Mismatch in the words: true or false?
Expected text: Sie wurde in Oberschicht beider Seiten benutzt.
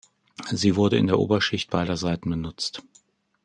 true